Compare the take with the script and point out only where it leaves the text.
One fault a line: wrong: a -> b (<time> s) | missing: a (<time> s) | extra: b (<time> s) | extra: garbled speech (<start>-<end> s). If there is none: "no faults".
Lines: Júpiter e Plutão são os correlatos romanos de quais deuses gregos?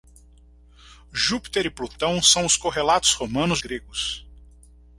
missing: de quais deuses (3.6 s)